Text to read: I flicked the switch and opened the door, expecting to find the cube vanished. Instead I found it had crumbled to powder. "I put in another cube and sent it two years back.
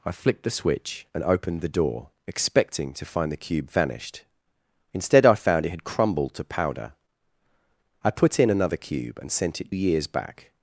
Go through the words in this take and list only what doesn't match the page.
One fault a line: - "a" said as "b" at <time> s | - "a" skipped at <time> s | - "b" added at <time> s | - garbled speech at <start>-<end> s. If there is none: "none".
- "two" skipped at 9.7 s